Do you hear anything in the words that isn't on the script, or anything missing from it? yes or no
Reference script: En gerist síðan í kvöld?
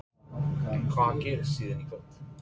yes